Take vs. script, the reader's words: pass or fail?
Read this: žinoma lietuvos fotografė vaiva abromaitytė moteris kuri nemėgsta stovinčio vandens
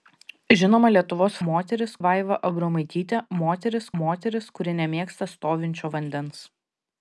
fail